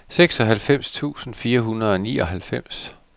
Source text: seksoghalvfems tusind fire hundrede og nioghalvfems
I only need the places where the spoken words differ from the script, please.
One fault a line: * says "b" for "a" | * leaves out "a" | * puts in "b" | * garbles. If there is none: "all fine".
all fine